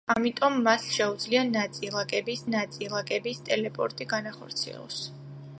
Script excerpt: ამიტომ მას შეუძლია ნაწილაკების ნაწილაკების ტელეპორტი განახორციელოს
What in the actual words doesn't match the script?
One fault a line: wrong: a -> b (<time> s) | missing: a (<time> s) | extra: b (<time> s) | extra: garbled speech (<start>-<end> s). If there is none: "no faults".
no faults